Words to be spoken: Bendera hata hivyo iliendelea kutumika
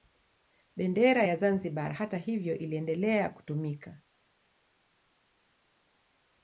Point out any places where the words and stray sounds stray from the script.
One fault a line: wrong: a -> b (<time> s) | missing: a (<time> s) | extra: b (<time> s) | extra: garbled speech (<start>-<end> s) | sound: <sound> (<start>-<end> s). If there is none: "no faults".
extra: ya Zanzibar (1.2 s)